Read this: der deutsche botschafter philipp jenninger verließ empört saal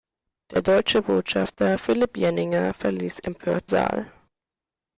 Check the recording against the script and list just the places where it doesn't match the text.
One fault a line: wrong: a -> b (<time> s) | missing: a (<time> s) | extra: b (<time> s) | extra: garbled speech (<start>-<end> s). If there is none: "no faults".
no faults